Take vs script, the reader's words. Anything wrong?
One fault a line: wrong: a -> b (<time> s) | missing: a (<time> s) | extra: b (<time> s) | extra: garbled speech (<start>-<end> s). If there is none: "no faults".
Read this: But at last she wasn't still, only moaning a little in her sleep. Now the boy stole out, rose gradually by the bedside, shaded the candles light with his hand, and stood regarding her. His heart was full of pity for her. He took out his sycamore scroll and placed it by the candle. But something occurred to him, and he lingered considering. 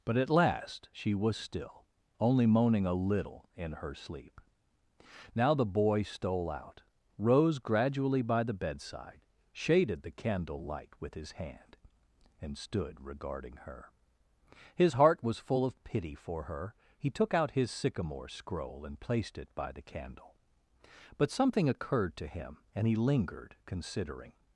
wrong: wasn't -> was (1.1 s)
wrong: candles -> candle (10.1 s)